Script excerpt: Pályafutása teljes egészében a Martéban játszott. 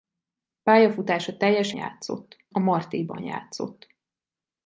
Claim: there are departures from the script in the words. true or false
true